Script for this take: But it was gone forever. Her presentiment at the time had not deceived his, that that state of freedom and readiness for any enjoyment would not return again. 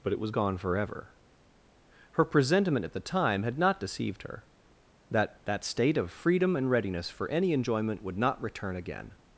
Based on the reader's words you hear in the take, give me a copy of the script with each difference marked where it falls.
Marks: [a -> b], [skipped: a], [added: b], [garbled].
But it was gone forever. Her presentiment at the time had not deceived [his, -> her] that that state of freedom and readiness for any enjoyment would not return again.